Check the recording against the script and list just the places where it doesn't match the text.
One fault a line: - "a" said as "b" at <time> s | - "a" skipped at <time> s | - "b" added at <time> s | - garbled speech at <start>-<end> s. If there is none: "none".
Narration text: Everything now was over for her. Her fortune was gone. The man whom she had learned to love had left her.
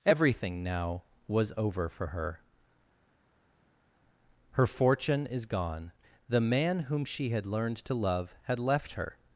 - "was" said as "is" at 5.3 s